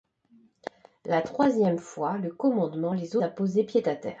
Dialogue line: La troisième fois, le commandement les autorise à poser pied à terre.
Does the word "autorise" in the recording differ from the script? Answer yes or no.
yes